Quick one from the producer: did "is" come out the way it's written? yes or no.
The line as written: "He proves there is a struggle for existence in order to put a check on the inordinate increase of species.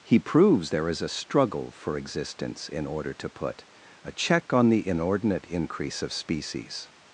yes